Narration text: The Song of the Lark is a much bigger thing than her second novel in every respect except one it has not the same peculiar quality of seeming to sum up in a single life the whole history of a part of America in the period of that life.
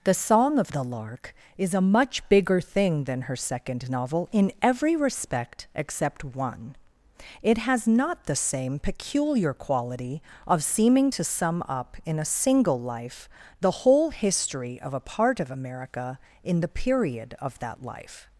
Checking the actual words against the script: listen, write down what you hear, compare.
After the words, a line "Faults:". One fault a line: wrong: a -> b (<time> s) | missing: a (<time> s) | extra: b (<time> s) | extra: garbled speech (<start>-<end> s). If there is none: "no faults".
The Song of the Lark is a much bigger thing than her second novel in every respect except one it has not the same peculiar quality of seeming to sum up in a single life the whole history of a part of America in the period of that life.
Faults:
no faults